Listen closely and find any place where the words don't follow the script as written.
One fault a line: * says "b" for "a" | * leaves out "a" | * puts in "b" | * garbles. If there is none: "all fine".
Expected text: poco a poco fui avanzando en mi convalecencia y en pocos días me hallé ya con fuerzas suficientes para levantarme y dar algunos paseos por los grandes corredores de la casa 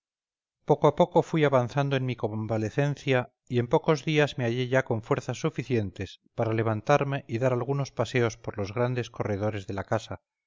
all fine